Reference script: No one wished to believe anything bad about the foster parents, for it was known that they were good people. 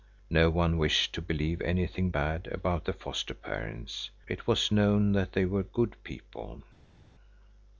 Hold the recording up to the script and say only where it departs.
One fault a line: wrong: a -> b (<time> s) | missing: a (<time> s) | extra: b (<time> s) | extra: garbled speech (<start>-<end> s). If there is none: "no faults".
missing: for (4.1 s)